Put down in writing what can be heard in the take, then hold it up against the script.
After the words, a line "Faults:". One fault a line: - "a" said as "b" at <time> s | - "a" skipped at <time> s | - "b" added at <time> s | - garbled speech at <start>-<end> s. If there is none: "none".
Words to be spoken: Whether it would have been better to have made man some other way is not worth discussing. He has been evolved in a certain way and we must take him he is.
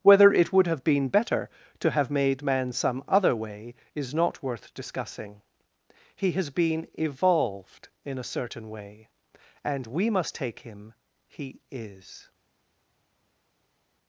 Whether it would have been better to have made man some other way is not worth discussing. He has been evolved in a certain way and we must take him he is.
Faults:
none